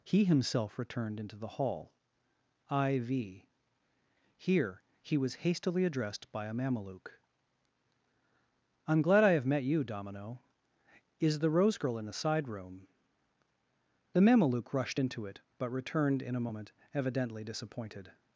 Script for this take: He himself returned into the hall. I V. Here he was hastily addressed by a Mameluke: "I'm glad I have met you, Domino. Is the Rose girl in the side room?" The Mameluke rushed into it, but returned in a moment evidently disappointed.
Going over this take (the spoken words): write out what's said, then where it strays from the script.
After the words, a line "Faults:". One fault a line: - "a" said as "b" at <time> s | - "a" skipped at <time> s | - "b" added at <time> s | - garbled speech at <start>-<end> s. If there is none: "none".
He himself returned into the hall. I V. Here he was hastily addressed by a Mameluke: "I'm glad I have met you, Domino. Is the Rose girl in the side room?" The Mameluke rushed into it, but returned in a moment evidently disappointed.
Faults:
none